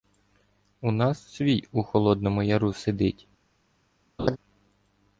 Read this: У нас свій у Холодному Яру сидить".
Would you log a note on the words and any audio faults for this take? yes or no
yes